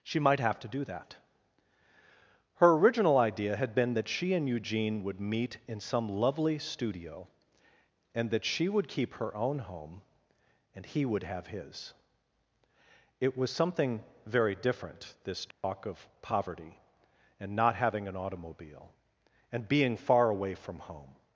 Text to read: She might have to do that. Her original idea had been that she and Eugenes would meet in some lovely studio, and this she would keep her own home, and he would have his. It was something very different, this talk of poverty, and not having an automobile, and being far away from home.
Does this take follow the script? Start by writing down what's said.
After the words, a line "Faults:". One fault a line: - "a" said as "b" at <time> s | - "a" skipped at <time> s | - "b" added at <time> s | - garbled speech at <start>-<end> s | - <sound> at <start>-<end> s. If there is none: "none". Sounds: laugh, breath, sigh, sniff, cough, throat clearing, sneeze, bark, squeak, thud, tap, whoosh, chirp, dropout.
She might have to do that. Her original idea had been that she and Eugene would meet in some lovely studio, and that she would keep her own home, and he would have his. It was something very different, this talk of poverty, and not having an automobile, and being far away from home.
Faults:
- "Eugenes" said as "Eugene" at 4.5 s
- "this" said as "that" at 8.3 s
- dropout at 15.5-15.6 s